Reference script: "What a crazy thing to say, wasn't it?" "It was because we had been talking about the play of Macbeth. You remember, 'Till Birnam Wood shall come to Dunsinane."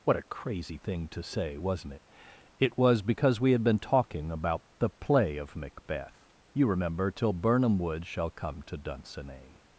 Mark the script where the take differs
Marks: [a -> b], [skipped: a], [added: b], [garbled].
"What a crazy thing to say, wasn't it?" "It was because we had been talking about the play of Macbeth. You remember, 'Till Birnam Wood shall come to Dunsinane."